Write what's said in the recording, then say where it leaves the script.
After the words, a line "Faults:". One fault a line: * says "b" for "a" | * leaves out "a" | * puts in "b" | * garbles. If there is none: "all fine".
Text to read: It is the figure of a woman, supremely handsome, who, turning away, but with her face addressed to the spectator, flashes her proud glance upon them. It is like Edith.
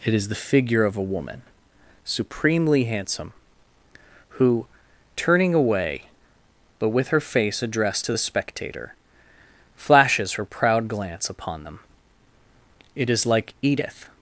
It is the figure of a woman, supremely handsome, who, turning away, but with her face addressed to the spectator, flashes her proud glance upon them. It is like Edith.
Faults:
all fine